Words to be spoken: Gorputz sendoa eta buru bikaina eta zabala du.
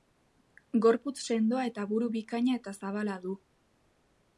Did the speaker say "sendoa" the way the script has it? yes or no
yes